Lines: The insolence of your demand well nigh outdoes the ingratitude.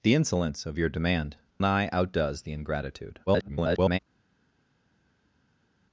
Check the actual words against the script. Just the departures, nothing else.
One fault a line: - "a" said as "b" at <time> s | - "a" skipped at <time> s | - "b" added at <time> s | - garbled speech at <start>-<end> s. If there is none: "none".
- "well" skipped at 1.4 s
- garbled speech at 3.3-4.0 s